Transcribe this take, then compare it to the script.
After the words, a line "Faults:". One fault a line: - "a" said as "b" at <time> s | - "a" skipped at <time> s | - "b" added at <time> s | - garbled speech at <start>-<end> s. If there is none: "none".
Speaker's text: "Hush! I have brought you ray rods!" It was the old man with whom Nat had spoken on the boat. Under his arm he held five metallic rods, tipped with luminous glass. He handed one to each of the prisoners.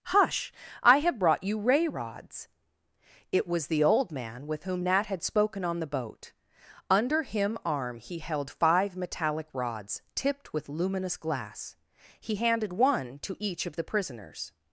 "Hush! I have brought you ray rods!" It was the old man with whom Nat had spoken on the boat. Under him arm he held five metallic rods, tipped with luminous glass. He handed one to each of the prisoners.
Faults:
- "his" said as "him" at 7.2 s